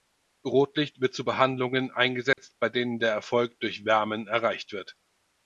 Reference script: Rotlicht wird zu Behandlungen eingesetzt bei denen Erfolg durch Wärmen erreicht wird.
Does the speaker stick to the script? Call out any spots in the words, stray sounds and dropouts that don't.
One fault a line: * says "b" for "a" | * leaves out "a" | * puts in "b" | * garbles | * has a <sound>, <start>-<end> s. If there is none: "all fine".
* has a dropout, 2.3-2.4 s
* puts in "der"